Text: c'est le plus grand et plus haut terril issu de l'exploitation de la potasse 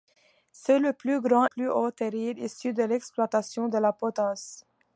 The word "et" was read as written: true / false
false